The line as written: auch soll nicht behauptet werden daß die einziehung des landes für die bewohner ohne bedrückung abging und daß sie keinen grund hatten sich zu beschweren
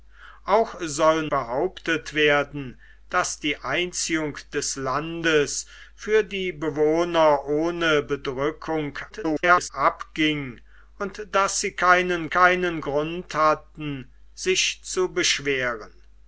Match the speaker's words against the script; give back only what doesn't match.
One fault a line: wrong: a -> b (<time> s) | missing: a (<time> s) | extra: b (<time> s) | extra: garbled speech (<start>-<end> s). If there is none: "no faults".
missing: nicht (1.3 s)
extra: garbled speech (9.1-9.7 s)
extra: keinen (12.3 s)